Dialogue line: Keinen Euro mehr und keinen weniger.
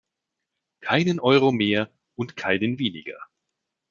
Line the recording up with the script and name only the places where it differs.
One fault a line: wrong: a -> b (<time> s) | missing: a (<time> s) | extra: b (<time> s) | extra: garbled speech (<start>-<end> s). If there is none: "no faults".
no faults